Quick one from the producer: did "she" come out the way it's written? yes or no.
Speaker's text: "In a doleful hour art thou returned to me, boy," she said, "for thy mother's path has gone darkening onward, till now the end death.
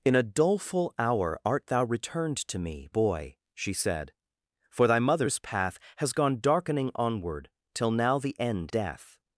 yes